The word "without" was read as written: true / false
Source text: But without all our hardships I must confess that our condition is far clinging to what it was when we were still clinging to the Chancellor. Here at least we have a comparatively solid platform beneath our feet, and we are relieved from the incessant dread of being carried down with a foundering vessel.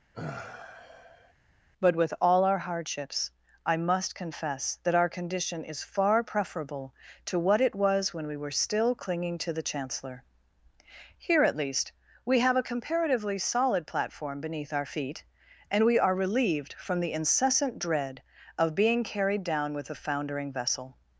false